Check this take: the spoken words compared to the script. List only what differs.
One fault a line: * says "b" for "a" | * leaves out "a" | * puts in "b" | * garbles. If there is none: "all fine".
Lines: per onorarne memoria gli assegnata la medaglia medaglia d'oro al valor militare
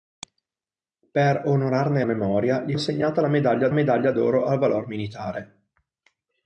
all fine